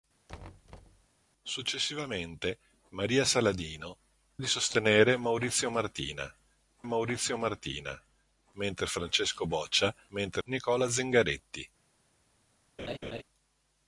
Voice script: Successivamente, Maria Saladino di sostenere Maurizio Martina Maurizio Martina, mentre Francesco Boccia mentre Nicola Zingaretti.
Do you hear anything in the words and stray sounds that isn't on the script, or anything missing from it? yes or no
yes